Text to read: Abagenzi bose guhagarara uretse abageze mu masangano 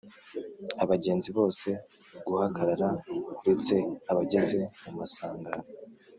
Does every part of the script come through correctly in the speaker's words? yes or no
yes